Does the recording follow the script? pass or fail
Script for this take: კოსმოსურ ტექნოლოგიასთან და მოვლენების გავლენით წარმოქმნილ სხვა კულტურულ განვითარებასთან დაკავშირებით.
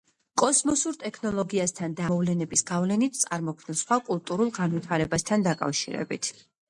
pass